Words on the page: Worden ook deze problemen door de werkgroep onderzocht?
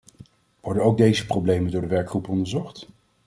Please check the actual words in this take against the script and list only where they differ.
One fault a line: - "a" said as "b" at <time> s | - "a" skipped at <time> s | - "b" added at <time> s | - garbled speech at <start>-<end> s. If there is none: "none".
none